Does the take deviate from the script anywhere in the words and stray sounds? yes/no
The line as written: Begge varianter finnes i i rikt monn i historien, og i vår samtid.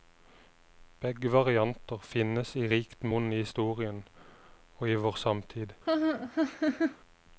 yes